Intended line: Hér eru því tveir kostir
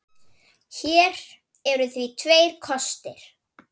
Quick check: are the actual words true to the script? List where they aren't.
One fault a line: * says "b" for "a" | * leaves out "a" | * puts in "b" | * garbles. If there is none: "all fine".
all fine